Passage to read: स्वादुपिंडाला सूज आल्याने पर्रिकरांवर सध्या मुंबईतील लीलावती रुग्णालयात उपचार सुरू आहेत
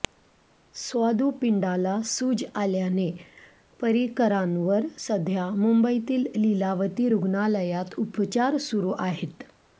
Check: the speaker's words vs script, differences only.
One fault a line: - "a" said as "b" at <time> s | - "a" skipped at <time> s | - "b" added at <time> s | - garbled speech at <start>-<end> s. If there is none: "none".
none